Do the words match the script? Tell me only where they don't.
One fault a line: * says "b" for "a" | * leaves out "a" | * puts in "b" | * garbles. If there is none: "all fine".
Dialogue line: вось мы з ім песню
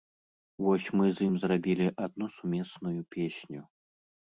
* puts in "зрабілі адну сумесную"